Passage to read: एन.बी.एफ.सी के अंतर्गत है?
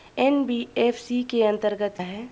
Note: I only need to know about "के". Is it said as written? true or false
true